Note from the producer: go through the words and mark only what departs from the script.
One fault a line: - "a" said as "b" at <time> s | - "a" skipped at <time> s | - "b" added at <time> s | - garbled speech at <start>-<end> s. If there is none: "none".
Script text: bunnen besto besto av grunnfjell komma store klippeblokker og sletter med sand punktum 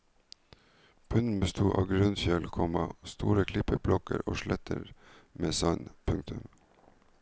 - "besto" skipped at 1.7 s